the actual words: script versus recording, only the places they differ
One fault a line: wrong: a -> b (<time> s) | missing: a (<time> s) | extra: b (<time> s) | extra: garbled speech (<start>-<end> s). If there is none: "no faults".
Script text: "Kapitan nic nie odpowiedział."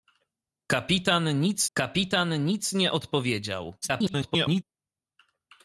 extra: kapitan nic (1.7 s)
extra: garbled speech (3.8-4.6 s)